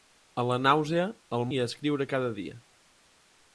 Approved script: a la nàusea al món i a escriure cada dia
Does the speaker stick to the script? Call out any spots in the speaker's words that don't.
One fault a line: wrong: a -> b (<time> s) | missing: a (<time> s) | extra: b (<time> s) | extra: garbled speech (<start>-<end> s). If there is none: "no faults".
missing: món (1.4 s)